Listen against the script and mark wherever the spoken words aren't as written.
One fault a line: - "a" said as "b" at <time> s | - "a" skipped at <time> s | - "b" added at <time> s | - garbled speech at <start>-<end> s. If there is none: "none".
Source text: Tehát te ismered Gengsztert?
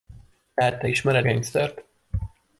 none